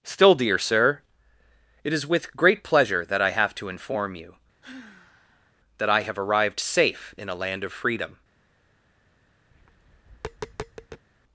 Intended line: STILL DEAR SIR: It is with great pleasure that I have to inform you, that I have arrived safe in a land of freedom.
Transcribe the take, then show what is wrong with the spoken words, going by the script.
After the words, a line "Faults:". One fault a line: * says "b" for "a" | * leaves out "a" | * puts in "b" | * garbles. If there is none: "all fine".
STILL DEAR SIR: It is with great pleasure that I have to inform you, that I have arrived safe in a land of freedom.
Faults:
all fine